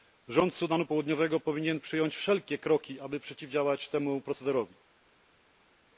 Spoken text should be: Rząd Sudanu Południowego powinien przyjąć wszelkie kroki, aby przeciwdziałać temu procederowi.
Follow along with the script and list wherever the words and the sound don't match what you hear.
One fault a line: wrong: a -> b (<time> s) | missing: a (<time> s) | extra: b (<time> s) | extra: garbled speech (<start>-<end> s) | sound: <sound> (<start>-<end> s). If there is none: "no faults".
no faults